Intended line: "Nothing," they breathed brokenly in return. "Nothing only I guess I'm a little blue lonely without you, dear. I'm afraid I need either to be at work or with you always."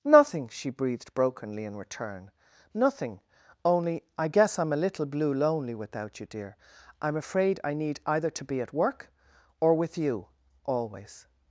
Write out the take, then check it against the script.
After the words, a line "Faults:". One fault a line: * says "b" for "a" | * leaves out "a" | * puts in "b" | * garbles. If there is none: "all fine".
"Nothing," she breathed brokenly in return. "Nothing only I guess I'm a little blue lonely without you, dear. I'm afraid I need either to be at work or with you always."
Faults:
* says "she" for "they"